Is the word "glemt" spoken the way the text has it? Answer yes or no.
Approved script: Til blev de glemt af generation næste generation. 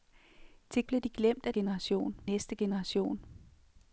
yes